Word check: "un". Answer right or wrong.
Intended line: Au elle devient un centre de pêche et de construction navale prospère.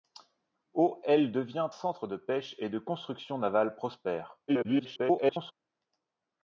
wrong